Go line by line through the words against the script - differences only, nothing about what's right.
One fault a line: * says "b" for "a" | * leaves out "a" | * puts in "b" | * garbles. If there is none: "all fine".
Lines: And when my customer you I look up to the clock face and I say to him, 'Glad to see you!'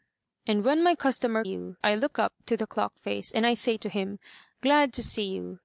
all fine